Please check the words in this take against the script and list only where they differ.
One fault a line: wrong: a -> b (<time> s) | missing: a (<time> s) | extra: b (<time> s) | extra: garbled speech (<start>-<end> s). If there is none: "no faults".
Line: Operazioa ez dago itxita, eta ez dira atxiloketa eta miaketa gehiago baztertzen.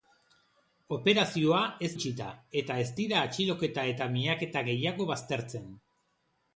missing: dago (1.9 s)